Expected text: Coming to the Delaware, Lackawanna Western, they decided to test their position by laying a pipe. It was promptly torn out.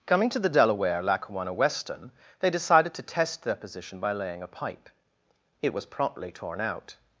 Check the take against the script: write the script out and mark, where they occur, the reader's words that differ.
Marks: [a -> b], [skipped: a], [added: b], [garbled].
Coming to the Delaware, Lackawanna Western, they decided to test their position by laying a pipe. It was promptly torn out.